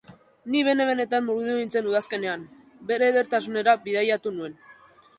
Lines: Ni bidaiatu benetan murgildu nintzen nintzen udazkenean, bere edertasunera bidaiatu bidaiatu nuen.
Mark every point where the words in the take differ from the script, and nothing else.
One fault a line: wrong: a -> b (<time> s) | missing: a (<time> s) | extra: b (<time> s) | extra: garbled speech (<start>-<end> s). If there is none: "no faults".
wrong: bidaiatu -> bene (0.7 s)
missing: nintzen (1.9 s)
missing: bidaiatu (4.4 s)